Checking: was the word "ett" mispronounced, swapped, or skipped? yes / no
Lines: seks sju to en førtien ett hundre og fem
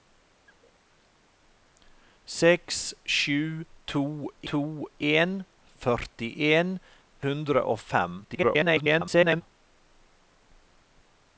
yes